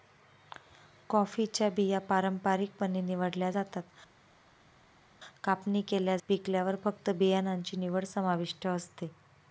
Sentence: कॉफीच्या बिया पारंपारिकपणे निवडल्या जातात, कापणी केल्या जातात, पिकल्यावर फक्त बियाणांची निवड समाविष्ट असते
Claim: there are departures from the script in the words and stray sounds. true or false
true